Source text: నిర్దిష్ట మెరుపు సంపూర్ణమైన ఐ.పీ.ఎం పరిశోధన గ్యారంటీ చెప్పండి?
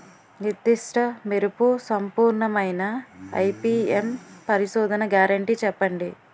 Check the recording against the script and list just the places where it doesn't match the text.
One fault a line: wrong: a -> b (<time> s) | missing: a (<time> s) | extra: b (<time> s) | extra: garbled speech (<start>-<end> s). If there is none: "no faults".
no faults